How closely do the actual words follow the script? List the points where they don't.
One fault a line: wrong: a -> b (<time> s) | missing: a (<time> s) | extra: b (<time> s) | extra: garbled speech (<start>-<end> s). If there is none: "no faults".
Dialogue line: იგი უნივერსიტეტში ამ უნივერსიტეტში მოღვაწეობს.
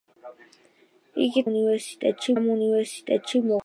no faults